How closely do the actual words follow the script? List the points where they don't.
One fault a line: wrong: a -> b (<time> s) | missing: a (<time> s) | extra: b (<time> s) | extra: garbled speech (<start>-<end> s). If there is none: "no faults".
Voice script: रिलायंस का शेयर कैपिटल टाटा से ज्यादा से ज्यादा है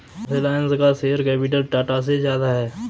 missing: से ज्यादा (2.5 s)